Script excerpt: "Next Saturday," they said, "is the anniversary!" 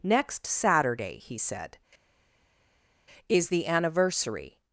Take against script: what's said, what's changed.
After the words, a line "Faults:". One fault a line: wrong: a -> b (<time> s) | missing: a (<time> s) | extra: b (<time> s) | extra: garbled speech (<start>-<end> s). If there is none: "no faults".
"Next Saturday," he said, "is the anniversary!"
Faults:
wrong: they -> he (1.2 s)